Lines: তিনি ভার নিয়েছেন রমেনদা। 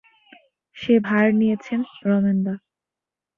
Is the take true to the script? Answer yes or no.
no